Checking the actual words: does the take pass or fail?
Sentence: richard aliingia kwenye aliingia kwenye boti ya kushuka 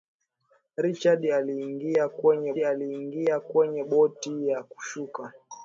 pass